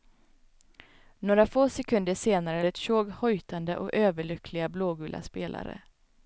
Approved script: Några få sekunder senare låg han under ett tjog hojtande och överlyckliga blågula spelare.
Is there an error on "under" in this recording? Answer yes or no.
yes